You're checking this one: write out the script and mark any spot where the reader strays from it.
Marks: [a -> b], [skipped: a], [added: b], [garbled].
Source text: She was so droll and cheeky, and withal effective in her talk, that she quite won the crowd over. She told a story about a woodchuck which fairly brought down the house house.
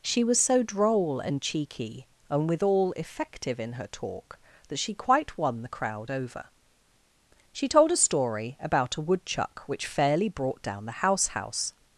She was so droll and cheeky, and withal effective in her talk, that she quite won the crowd over. She told a story about a woodchuck which fairly brought down the house house.